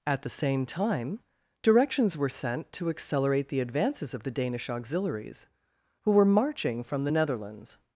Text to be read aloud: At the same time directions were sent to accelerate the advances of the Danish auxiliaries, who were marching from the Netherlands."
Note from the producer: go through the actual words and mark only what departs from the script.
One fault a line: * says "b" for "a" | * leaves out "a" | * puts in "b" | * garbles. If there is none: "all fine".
all fine